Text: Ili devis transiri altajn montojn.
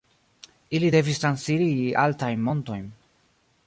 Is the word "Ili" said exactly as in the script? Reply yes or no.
yes